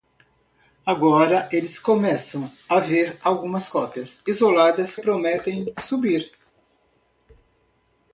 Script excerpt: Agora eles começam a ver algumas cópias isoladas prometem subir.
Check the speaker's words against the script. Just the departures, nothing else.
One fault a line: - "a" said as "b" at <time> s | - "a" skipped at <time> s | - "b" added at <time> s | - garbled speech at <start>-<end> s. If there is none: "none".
none